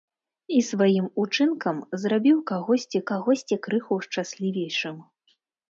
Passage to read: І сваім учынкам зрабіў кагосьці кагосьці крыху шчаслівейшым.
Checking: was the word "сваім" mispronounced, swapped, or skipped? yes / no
no